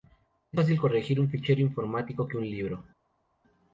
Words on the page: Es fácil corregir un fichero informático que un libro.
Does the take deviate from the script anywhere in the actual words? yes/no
no